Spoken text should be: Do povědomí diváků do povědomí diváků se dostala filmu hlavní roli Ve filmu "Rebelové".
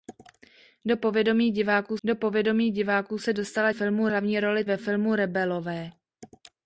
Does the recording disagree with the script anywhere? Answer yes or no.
no